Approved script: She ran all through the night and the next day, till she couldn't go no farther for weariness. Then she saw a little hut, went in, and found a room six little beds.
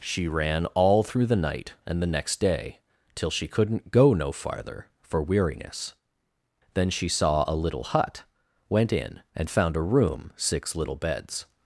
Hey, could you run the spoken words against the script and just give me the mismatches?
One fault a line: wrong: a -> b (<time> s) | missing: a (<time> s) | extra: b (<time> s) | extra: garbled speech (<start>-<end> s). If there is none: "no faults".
no faults